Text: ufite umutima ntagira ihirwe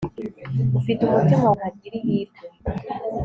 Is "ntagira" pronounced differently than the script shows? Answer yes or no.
no